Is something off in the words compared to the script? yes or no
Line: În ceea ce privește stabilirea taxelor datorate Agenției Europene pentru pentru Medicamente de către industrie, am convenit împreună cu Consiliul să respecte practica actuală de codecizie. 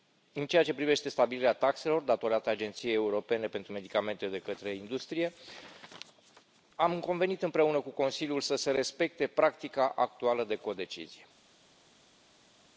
yes